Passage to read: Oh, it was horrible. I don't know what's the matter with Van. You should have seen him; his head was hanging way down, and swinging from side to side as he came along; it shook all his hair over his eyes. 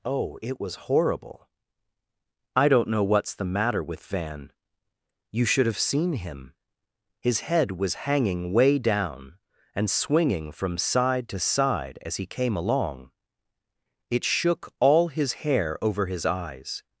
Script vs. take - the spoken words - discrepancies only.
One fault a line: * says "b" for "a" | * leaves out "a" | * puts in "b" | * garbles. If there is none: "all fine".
all fine